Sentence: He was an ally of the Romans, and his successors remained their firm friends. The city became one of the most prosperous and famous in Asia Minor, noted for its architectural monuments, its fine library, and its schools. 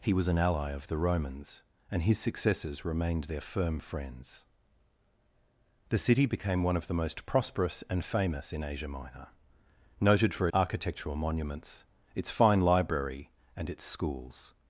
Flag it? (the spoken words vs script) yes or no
yes